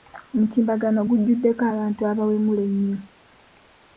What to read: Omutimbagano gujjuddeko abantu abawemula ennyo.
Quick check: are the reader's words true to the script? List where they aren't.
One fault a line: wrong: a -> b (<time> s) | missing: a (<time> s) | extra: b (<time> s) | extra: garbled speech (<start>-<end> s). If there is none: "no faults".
no faults